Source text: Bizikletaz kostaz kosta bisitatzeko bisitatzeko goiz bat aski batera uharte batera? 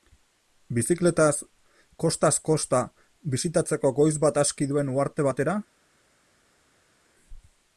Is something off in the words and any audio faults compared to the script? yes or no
yes